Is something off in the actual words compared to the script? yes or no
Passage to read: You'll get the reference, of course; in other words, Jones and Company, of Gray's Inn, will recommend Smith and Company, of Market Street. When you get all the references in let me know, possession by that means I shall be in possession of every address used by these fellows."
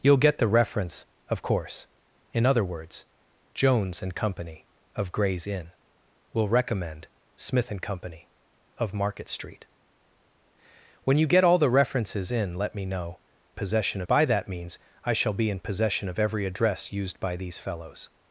no